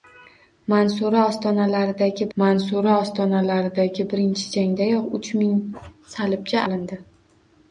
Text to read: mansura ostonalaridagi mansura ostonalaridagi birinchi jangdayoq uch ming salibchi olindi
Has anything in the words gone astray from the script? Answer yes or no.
no